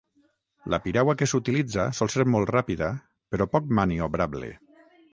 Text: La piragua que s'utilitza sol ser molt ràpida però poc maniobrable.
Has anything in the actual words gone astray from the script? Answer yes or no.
no